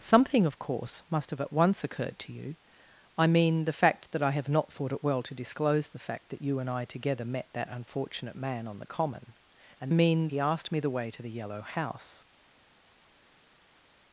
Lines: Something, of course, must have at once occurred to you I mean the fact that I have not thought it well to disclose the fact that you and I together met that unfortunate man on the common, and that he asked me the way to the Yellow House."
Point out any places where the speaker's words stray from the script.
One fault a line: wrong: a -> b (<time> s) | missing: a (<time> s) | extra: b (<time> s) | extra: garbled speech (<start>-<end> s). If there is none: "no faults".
wrong: that -> mean (9.9 s)